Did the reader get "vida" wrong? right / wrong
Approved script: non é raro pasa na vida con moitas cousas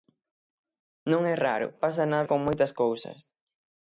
wrong